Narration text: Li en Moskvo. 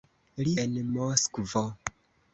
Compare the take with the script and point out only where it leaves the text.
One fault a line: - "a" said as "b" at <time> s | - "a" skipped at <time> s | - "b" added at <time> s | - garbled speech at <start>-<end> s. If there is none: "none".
none